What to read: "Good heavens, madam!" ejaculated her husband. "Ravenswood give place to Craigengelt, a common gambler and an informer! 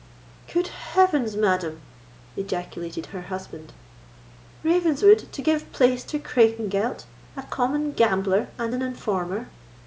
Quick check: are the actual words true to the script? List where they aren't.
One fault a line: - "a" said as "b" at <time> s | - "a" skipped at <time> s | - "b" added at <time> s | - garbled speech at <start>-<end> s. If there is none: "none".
- "to" added at 5.3 s